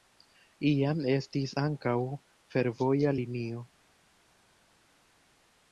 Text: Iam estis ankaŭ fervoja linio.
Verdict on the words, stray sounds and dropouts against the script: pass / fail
pass